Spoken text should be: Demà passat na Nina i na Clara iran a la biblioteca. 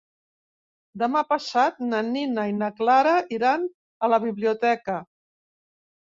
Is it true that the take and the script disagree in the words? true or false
false